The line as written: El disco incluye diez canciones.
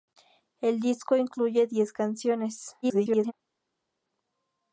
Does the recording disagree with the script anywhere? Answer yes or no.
yes